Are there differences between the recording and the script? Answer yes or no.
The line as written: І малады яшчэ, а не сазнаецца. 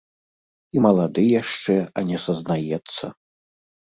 no